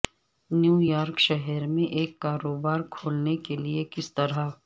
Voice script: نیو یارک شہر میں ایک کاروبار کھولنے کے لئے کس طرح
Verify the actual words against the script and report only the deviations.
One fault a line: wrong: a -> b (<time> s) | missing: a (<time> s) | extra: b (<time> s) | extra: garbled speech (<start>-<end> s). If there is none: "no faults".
no faults